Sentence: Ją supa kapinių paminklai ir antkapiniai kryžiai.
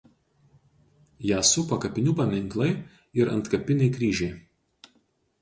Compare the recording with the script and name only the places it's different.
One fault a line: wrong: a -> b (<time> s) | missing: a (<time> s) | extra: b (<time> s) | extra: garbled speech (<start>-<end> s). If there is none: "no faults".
no faults